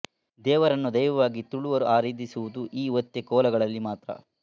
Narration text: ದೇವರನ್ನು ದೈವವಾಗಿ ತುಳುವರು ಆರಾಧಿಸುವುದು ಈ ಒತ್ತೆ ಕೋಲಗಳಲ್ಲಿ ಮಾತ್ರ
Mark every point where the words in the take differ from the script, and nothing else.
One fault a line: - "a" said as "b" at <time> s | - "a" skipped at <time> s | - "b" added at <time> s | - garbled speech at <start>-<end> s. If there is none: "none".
none